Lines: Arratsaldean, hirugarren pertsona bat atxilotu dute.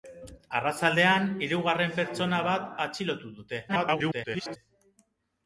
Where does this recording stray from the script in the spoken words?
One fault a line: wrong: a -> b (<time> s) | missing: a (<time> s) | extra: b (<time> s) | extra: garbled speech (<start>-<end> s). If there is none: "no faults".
extra: garbled speech (3.7-4.6 s)